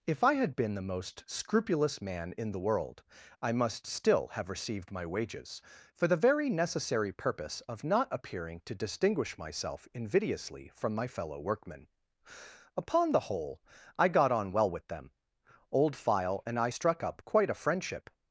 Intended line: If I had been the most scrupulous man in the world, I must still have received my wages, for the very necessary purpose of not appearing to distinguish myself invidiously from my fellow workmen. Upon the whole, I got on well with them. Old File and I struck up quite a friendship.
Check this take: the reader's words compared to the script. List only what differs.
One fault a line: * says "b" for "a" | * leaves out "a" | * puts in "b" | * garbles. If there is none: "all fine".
all fine